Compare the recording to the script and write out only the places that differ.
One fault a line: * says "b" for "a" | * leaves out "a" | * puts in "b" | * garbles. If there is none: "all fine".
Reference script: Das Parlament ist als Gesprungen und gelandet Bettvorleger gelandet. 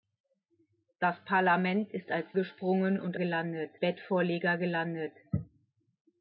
all fine